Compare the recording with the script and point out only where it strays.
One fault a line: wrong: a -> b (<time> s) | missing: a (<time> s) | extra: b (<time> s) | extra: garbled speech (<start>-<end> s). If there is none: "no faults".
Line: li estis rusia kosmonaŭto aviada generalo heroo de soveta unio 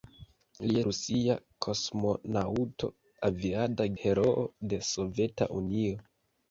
missing: estis (0.8 s)
missing: generalo (3.9 s)